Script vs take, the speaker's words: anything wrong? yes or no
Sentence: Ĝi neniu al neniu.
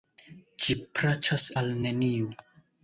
yes